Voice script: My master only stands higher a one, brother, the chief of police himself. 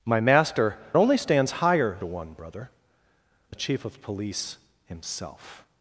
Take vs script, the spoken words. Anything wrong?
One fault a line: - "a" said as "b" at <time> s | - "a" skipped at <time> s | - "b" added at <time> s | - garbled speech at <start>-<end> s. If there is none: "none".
none